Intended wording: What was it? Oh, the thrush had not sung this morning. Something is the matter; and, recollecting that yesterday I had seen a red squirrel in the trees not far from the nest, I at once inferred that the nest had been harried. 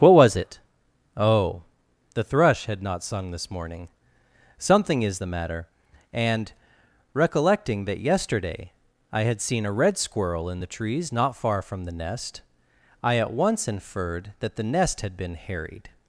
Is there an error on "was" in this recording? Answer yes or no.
no